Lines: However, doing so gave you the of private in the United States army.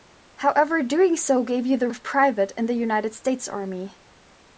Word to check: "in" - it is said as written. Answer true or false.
true